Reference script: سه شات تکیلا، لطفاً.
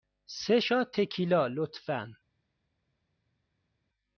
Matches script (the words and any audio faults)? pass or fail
pass